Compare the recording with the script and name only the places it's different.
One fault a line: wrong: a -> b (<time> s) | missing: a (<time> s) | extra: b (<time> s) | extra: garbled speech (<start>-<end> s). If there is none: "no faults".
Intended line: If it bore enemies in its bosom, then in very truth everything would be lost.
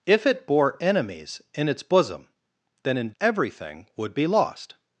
missing: very truth (3.1 s)